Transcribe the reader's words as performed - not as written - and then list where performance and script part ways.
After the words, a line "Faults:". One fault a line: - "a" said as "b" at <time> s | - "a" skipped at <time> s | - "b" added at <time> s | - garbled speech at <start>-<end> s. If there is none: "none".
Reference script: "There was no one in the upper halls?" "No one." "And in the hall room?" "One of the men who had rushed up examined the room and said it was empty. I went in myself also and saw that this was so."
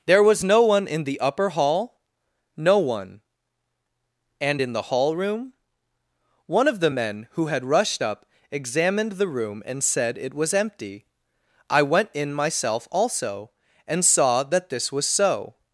"There was no one in the upper hall?" "No one." "And in the hall room?" "One of the men who had rushed up examined the room and said it was empty. I went in myself also and saw that this was so."
Faults:
- "halls" said as "hall" at 1.5 s